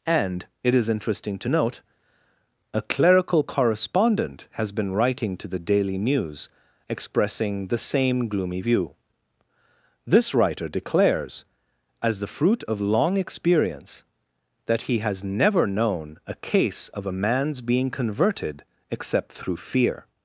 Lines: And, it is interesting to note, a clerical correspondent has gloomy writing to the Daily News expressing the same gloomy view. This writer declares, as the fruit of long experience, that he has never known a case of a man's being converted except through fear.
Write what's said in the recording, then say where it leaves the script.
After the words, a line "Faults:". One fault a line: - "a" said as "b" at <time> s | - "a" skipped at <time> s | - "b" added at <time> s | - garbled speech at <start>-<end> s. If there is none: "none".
And, it is interesting to note, a clerical correspondent has been writing to the Daily News expressing the same gloomy view. This writer declares, as the fruit of long experience, that he has never known a case of a man's being converted except through fear.
Faults:
- "gloomy" said as "been" at 4.7 s